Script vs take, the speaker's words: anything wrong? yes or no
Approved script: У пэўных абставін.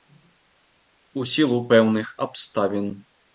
yes